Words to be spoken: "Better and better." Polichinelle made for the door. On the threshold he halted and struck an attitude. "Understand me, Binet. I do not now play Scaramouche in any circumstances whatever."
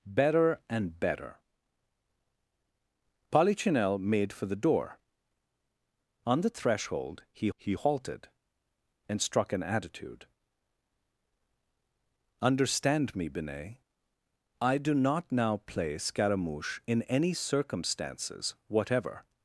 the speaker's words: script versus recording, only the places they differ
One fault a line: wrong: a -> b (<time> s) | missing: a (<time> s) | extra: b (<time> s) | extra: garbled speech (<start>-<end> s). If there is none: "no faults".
extra: he (7.5 s)